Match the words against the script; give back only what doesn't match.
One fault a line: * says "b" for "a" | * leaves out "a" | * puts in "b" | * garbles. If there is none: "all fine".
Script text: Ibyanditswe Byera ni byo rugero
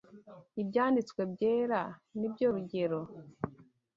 all fine